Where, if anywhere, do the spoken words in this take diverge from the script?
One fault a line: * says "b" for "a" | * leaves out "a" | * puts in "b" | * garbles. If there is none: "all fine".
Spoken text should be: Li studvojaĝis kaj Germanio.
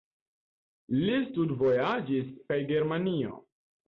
all fine